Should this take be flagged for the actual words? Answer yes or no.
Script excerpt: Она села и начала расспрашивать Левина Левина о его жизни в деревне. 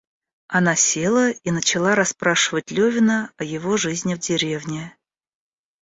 yes